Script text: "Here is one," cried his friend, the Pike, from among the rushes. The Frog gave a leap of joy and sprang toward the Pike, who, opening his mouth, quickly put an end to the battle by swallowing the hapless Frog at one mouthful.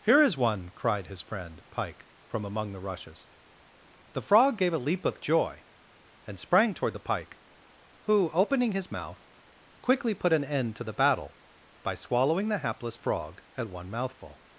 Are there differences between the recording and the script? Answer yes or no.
yes